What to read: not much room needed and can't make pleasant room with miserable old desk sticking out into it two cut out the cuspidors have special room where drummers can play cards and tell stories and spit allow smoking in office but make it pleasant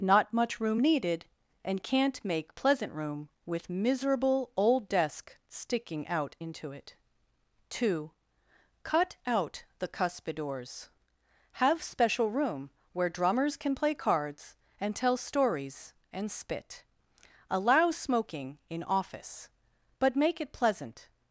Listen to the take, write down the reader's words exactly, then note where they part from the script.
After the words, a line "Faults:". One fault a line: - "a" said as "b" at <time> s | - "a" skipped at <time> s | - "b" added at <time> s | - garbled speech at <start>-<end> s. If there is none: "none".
not much room needed and can't make pleasant room with miserable old desk sticking out into it two cut out the cuspidors have special room where drummers can play cards and tell stories and spit allow smoking in office but make it pleasant
Faults:
none